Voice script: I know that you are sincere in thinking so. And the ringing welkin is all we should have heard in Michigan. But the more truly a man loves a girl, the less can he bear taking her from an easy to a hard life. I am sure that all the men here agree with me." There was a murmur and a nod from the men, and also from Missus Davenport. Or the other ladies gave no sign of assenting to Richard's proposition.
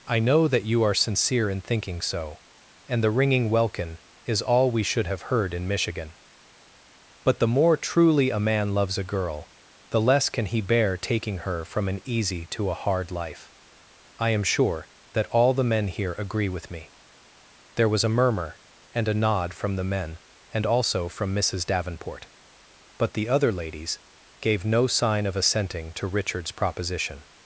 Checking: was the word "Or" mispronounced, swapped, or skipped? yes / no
yes